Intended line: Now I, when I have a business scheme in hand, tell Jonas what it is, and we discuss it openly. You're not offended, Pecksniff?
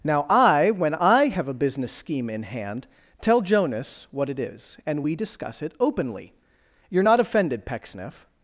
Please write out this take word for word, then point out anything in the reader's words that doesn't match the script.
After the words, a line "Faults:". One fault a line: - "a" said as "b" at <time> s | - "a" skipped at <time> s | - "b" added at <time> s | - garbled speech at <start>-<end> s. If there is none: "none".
Now I, when I have a business scheme in hand, tell Jonas what it is, and we discuss it openly. You're not offended, Pecksniff?
Faults:
none